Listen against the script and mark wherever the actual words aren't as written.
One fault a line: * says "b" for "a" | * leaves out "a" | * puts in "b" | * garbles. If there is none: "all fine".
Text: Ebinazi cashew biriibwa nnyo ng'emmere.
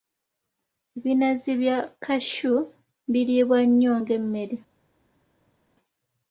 * puts in "bya"